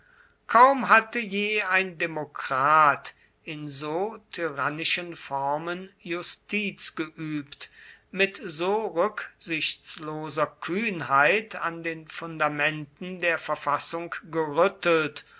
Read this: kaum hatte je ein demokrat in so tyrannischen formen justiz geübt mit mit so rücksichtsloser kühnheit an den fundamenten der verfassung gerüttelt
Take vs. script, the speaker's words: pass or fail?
fail